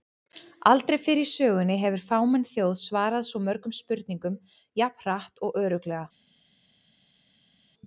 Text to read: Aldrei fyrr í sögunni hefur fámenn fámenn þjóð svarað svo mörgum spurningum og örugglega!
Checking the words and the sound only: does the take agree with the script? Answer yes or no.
no